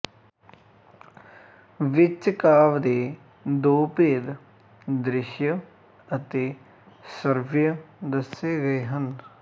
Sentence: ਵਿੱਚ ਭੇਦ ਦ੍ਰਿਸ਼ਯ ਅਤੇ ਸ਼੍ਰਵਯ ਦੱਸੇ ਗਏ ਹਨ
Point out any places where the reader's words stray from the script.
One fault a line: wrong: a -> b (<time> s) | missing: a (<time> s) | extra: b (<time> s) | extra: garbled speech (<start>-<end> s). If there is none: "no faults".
extra: ਕਾਵਿ ਦੇ ਦੋ (2.3 s)